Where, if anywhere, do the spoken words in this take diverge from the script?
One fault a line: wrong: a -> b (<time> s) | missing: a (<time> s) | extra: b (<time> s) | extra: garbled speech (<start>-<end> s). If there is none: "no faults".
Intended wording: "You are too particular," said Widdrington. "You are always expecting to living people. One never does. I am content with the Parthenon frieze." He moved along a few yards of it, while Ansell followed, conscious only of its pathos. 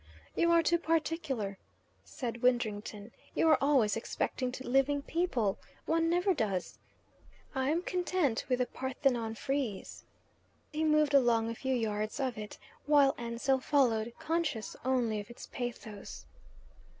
no faults